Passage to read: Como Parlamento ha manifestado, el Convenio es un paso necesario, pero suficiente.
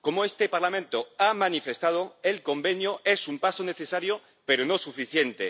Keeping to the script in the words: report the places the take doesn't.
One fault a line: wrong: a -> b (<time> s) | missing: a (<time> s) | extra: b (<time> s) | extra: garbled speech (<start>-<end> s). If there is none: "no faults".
extra: este (0.2 s)
extra: no (4.6 s)